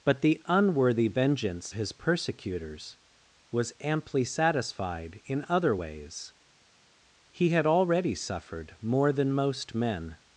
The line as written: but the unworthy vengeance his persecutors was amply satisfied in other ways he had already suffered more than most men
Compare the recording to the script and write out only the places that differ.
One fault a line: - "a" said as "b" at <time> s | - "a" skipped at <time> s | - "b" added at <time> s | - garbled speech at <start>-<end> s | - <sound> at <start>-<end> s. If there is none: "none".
none